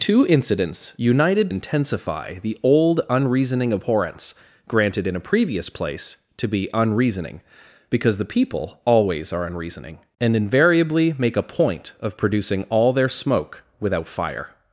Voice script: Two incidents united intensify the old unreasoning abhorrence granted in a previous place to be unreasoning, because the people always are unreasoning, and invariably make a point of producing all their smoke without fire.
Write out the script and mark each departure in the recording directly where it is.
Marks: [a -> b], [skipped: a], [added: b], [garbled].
Two incidents united intensify the old unreasoning abhorrence granted in a previous place to be unreasoning, because the people always are unreasoning, and invariably make a point of producing all their smoke without fire.